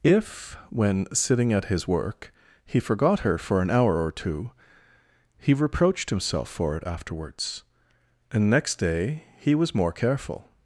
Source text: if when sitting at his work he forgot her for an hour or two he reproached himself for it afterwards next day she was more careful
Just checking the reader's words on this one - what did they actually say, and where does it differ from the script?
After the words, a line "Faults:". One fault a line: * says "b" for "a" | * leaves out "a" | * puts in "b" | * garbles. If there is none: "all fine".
if when sitting at his work he forgot her for an hour or two he reproached himself for it afterwards and next day he was more careful
Faults:
* puts in "and"
* says "he" for "she"